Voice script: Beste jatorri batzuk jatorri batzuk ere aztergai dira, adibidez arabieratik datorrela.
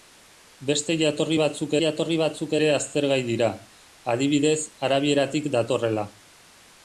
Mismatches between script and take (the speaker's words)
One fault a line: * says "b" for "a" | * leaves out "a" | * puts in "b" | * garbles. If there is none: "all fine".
all fine